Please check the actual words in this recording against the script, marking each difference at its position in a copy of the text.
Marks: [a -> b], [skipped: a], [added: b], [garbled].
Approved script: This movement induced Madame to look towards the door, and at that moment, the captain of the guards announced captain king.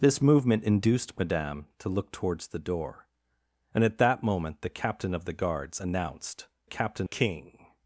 This movement induced Madame to look towards the door, and at that moment, the captain of the guards announced captain king.